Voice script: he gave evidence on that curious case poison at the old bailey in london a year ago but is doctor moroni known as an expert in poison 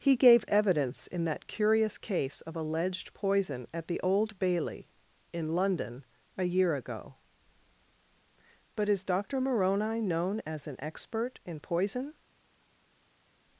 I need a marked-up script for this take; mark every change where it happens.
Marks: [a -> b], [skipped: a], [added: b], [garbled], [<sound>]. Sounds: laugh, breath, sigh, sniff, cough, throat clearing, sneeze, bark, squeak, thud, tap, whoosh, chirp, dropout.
he gave evidence [on -> in] that curious case [added: of alleged] poison at the old bailey in london a year ago but is doctor moroni known as an expert in poison